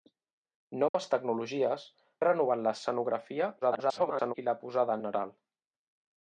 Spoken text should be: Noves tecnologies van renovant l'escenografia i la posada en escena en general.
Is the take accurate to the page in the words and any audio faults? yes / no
no